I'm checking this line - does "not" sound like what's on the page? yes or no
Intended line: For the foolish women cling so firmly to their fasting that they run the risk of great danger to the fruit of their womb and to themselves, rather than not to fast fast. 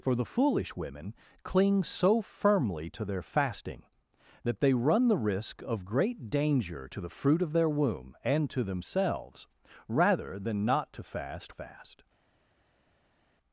yes